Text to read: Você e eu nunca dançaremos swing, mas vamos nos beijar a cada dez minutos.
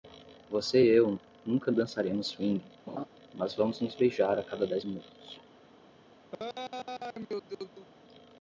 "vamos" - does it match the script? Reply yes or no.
yes